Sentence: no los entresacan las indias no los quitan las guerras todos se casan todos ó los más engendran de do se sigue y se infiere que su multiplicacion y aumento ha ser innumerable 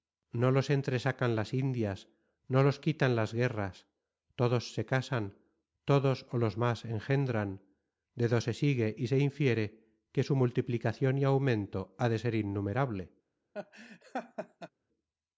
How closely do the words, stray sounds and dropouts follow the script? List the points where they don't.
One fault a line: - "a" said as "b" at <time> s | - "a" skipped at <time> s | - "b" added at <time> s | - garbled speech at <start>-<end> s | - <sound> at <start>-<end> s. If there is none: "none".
- "de" added at 12.1 s
- laugh at 13.5-14.7 s